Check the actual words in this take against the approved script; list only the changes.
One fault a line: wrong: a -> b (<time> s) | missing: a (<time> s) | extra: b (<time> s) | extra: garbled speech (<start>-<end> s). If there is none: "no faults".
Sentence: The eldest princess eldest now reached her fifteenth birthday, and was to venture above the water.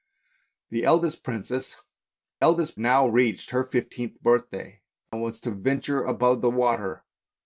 no faults